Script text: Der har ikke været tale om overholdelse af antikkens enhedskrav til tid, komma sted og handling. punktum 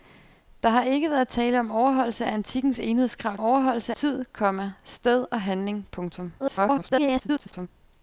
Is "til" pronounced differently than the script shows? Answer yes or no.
yes